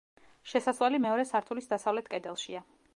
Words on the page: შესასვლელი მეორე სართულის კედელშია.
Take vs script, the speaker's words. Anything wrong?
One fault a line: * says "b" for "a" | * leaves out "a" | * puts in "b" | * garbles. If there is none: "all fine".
* puts in "დასავლეთ"